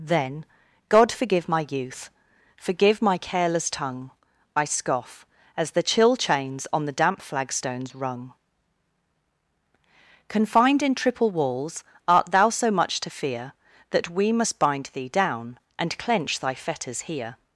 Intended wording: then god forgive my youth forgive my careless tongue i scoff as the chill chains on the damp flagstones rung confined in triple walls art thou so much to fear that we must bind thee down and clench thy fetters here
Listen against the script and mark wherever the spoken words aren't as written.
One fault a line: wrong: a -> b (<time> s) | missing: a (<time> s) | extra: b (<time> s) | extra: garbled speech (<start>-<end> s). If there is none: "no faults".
no faults